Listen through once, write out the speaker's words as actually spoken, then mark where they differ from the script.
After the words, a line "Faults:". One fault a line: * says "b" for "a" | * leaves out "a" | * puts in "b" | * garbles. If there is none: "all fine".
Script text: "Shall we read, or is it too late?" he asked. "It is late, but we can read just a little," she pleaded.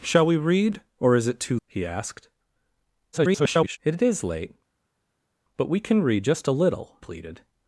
"Shall we read, or is it too?" he asked. [garbled] "It is late, but we can read just a little," pleaded.
Faults:
* leaves out "late"
* garbles
* leaves out "she"